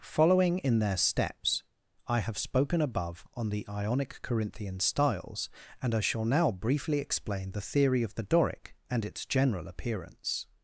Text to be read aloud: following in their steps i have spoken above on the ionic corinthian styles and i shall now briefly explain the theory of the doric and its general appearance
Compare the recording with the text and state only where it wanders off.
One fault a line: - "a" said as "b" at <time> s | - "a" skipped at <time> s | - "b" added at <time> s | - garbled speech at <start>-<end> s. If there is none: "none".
none